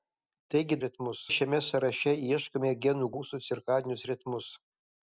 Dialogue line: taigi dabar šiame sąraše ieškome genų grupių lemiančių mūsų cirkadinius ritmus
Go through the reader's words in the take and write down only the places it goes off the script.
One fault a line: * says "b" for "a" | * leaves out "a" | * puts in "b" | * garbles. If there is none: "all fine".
* says "ritmus" for "dabar"
* leaves out "grupių lemiančių"